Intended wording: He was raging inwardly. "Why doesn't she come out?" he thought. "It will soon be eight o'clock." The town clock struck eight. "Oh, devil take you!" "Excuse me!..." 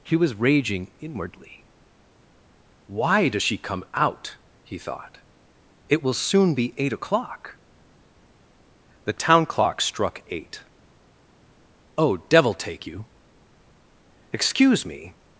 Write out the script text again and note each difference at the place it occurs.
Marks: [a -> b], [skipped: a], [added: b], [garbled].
He was raging inwardly. "Why [doesn't -> does] she come out?" he thought. "It will soon be eight o'clock." The town clock struck eight. "Oh, devil take you!" "Excuse me!..."